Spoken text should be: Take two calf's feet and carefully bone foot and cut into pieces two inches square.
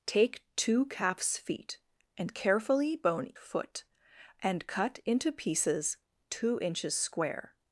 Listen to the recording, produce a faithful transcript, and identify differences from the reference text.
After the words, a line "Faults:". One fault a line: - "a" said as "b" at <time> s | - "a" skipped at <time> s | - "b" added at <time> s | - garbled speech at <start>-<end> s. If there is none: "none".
Take two calf's feet and carefully bone foot and cut into pieces two inches square.
Faults:
none